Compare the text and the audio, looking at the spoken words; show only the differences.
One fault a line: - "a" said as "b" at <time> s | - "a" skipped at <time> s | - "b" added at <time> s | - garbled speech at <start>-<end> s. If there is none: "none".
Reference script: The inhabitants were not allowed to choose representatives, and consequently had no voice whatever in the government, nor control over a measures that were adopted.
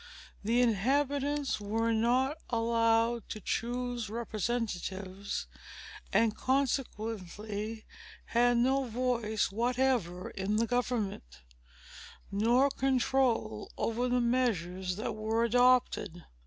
- "a" said as "the" at 14.1 s